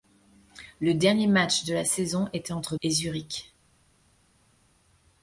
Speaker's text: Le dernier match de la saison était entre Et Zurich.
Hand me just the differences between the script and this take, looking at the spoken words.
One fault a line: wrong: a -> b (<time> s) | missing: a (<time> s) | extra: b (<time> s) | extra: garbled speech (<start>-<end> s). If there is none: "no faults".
no faults